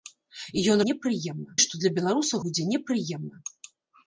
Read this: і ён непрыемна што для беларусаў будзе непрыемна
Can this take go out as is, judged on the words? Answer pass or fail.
pass